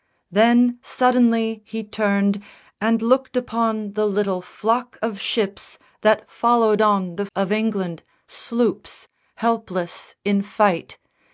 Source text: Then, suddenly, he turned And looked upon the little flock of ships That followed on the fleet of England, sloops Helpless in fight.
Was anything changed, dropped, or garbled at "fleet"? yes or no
yes